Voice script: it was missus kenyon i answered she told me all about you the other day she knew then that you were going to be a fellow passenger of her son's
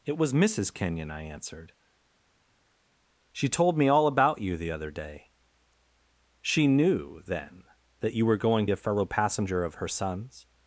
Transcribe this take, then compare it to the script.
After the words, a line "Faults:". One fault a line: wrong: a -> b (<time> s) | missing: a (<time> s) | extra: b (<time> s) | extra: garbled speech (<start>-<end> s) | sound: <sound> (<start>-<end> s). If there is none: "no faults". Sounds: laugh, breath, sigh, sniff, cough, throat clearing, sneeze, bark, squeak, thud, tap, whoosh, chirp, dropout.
it was missus kenyon i answered she told me all about you the other day she knew then that you were going a fellow passenger of her son's
Faults:
missing: to be (8.7 s)